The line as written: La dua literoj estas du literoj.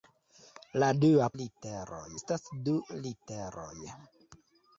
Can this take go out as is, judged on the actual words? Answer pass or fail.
pass